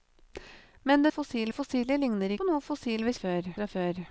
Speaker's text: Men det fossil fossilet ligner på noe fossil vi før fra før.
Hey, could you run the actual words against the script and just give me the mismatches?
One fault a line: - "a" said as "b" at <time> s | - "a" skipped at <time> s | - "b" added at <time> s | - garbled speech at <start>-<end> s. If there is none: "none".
none